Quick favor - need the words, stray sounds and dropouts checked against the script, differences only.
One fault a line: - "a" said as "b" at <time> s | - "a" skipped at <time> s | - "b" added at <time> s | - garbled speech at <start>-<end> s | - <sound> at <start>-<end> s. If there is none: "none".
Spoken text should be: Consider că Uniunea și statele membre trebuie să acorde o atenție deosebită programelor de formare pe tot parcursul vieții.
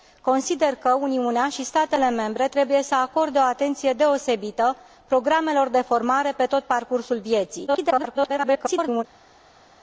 - garbled speech at 7.7-9.0 s